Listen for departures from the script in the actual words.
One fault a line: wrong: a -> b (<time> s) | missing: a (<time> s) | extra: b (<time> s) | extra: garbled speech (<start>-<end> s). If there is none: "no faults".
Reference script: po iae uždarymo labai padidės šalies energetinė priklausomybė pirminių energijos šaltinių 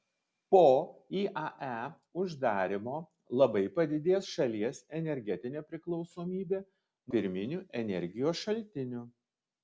no faults